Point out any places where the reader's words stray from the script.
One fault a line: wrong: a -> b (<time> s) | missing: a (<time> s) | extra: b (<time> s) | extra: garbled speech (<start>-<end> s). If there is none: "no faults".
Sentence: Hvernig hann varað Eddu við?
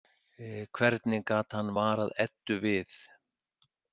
extra: gat (1.3 s)